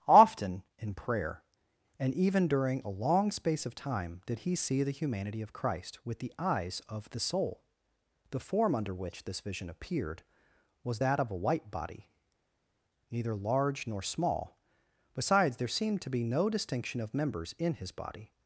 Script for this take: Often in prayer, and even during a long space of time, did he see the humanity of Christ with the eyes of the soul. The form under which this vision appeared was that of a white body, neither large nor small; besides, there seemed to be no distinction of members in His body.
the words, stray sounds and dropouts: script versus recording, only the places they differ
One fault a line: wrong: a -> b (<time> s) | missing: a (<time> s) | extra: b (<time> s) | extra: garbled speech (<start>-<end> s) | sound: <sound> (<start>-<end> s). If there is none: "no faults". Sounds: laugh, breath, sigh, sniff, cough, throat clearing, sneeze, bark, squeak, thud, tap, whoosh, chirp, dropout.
no faults